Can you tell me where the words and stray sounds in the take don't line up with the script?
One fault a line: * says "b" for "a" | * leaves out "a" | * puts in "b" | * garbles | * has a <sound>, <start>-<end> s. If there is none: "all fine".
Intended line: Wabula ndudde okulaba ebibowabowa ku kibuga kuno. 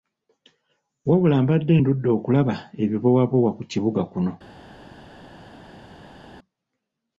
* puts in "mbadde"